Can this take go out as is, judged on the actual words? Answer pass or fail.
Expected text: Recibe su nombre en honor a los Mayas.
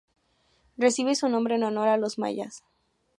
pass